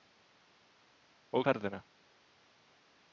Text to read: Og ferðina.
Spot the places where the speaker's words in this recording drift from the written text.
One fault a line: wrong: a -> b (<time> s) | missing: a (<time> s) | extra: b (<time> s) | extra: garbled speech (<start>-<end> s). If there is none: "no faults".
no faults